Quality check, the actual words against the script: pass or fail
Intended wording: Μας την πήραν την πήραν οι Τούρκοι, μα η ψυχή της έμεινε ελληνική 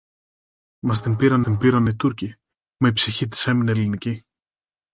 pass